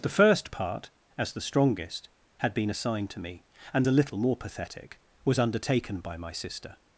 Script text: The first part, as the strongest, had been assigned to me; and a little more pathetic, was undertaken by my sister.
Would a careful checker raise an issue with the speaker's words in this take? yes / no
no